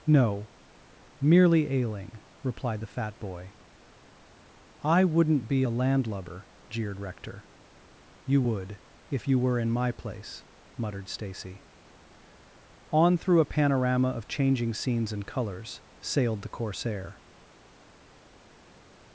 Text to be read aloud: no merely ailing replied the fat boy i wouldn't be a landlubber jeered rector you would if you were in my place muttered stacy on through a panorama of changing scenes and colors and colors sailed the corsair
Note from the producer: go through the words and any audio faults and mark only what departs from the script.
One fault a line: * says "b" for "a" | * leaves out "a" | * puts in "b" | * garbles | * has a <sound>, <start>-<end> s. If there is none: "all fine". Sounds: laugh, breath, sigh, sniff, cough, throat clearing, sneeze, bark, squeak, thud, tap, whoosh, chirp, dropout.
* leaves out "and colors"